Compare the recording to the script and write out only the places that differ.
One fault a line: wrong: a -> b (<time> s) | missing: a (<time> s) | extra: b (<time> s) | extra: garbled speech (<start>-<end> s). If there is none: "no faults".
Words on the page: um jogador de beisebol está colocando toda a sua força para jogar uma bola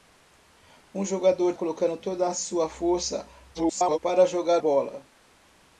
missing: de beisebol está (1.5 s)
extra: garbled speech (3.5-4.0 s)
missing: uma (4.6 s)